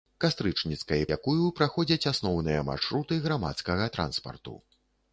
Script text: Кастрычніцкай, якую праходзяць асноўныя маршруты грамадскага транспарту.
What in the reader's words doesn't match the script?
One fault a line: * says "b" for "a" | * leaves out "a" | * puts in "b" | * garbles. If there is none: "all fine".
all fine